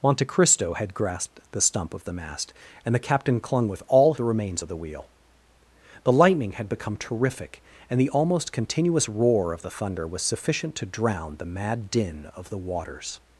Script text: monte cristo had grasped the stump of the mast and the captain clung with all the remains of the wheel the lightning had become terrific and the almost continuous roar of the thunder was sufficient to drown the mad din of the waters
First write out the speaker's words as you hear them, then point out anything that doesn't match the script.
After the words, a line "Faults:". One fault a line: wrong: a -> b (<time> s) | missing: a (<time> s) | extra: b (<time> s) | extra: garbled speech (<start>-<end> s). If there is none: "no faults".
monte cristo had grasped the stump of the mast and the captain clung with all the remains of the wheel the lightning had become terrific and the almost continuous roar of the thunder was sufficient to drown the mad din of the waters
Faults:
no faults